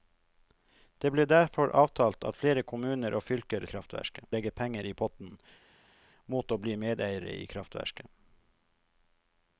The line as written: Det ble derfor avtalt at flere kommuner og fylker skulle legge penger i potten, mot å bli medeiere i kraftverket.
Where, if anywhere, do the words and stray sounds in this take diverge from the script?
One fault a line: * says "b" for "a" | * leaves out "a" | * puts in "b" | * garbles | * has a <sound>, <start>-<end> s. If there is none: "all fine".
* says "kraftverket" for "skulle"